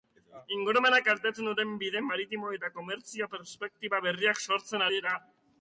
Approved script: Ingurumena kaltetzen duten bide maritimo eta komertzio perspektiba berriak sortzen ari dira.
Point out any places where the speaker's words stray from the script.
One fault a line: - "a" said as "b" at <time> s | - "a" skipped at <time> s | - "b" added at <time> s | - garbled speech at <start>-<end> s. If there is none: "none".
- "ari" skipped at 4.9 s